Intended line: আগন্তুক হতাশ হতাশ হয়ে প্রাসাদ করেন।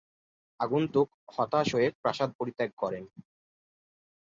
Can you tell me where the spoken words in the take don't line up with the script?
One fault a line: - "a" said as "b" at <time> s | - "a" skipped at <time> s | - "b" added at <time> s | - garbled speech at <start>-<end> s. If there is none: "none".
- "হতাশ" skipped at 1.7 s
- "পরিত্যাগ" added at 2.4 s